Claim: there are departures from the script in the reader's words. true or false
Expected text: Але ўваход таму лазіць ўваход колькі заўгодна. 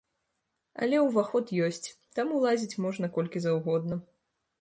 true